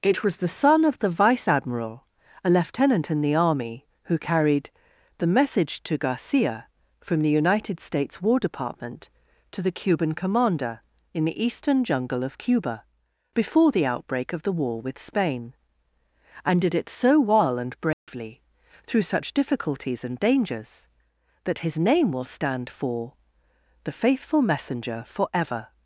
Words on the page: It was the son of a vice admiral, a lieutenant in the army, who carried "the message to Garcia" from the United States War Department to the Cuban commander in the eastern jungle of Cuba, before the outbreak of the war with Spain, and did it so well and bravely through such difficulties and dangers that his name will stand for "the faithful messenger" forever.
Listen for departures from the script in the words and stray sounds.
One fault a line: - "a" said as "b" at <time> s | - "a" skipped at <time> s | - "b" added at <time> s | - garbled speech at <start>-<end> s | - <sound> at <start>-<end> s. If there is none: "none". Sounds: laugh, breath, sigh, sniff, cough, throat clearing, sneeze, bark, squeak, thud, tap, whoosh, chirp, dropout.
- "a" said as "the" at 1.0 s
- dropout at 17.9-18.1 s